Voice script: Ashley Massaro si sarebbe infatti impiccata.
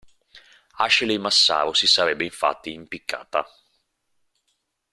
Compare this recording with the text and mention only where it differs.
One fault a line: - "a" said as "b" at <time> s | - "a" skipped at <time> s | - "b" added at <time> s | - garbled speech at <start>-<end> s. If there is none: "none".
none